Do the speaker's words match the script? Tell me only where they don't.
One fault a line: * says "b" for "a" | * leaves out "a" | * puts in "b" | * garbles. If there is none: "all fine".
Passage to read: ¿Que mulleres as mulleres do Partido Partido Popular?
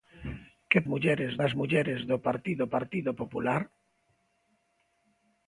all fine